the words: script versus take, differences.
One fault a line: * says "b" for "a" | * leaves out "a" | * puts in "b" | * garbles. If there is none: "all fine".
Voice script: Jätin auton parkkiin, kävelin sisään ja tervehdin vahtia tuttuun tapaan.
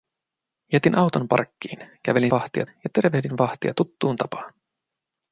* says "vahtia" for "sisään"